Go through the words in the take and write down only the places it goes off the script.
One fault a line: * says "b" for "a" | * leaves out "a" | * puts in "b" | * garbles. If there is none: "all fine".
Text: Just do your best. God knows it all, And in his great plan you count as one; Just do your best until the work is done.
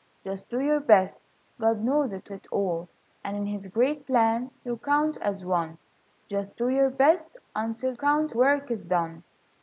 * puts in "it"
* says "count" for "the"